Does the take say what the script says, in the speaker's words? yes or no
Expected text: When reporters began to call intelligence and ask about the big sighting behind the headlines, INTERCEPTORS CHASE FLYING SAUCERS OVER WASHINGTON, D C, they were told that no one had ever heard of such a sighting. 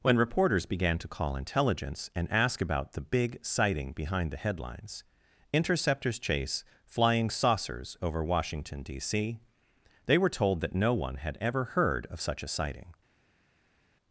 yes